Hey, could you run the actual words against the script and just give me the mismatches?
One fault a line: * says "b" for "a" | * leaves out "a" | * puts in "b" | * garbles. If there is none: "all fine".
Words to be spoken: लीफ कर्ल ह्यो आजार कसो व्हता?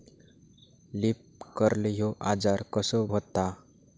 all fine